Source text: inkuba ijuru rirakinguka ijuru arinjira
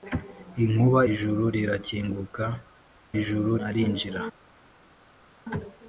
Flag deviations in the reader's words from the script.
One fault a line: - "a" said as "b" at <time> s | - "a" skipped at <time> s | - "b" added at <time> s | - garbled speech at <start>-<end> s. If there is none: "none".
none